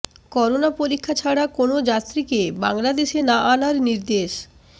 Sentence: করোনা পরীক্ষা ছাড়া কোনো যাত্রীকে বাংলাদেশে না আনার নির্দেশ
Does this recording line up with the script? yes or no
yes